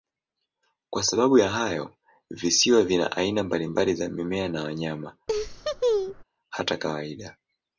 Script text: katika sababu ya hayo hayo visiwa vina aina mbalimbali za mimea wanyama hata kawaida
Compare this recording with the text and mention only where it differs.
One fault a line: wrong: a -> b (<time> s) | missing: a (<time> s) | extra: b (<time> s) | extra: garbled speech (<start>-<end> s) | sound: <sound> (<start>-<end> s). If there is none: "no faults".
wrong: katika -> kwa (0.9 s)
missing: hayo (1.9 s)
extra: na (4.5 s)
sound: laugh (5.3-6.2 s)